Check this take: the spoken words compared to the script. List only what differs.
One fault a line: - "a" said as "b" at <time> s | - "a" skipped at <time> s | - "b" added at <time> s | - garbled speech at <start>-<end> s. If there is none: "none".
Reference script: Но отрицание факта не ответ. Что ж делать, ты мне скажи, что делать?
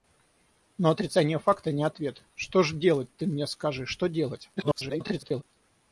- garbled speech at 4.6-5.4 s